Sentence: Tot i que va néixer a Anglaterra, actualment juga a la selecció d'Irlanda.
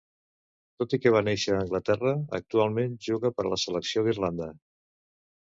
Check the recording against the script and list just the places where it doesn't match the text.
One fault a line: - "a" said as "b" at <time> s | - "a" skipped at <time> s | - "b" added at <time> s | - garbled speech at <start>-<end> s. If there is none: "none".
- "per" added at 3.4 s